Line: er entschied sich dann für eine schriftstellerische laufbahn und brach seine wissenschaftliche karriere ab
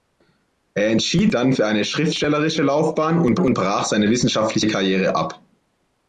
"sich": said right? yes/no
no